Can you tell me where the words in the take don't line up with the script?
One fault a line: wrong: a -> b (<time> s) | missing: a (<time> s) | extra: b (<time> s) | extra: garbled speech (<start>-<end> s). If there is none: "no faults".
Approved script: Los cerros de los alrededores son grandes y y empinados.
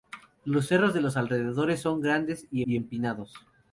no faults